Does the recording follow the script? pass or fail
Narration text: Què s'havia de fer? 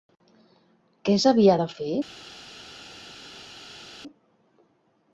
pass